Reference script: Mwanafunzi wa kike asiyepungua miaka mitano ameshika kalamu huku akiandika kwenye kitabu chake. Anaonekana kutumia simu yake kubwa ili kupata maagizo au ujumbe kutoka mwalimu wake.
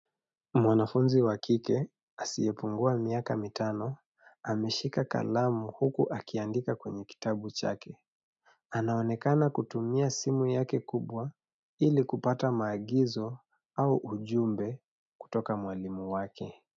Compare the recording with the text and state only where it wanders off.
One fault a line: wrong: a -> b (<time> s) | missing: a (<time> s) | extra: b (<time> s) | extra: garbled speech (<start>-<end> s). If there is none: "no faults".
no faults